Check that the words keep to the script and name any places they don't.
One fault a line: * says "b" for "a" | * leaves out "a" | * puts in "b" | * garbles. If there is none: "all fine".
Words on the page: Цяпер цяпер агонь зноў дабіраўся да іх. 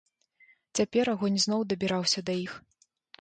* leaves out "цяпер"